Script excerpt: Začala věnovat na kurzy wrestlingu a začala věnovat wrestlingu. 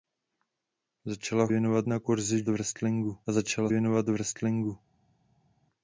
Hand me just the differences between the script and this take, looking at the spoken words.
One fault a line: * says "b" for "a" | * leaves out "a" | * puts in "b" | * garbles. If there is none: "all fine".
all fine